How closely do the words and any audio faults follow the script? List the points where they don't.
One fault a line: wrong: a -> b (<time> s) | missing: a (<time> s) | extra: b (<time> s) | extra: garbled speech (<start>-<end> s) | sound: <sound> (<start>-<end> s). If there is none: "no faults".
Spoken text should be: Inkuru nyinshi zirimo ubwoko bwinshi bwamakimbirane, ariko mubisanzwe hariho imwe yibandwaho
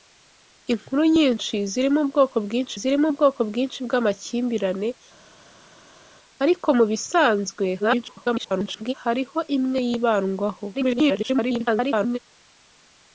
extra: zirimo ubwoko bwinshi (2.8 s)
extra: garbled speech (7.8-8.9 s)
extra: garbled speech (10.7-12.2 s)